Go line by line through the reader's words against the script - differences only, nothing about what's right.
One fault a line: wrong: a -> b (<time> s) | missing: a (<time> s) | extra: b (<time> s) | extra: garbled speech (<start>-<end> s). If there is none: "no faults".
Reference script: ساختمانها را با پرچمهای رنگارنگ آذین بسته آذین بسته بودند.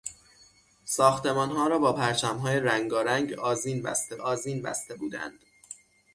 no faults